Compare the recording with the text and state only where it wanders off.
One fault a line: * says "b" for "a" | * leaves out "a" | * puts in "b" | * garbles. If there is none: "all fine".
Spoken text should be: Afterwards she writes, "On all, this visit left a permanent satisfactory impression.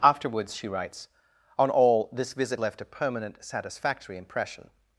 all fine